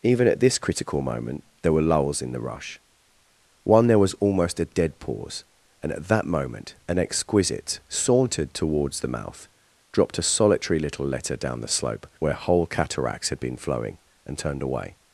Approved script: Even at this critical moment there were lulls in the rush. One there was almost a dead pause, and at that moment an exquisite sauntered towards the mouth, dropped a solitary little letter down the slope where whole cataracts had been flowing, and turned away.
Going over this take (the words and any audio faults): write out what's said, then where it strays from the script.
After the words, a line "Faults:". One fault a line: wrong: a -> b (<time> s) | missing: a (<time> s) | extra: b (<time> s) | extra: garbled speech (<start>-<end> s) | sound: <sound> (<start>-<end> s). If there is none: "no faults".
Even at this critical moment there were lulls in the rush. One there was almost a dead pause, and at that moment an exquisite sauntered towards the mouth, dropped a solitary little letter down the slope where whole cataracts had been flowing, and turned away.
Faults:
no faults